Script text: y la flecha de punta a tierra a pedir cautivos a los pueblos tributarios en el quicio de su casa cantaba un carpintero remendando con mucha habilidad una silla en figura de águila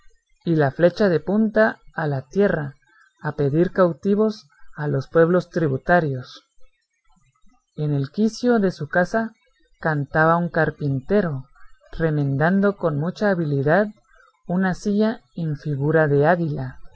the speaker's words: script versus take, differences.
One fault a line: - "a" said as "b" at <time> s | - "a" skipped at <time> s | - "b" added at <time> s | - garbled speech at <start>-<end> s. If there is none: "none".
- "la" added at 2.1 s